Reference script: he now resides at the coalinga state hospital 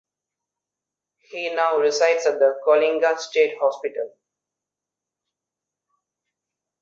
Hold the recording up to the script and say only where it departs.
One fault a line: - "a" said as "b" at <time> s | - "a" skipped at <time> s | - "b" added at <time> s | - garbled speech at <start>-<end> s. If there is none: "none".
none